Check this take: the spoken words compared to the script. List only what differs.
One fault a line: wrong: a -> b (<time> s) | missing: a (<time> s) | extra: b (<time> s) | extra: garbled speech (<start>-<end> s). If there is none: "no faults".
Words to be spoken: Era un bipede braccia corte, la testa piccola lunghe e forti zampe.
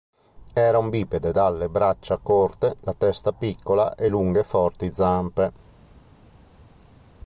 extra: dalle (1.3 s)
extra: e (3.9 s)